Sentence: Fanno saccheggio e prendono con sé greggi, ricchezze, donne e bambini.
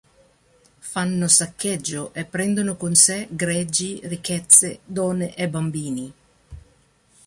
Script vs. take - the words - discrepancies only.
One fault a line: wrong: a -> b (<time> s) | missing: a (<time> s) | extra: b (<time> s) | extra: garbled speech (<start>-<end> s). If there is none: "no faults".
no faults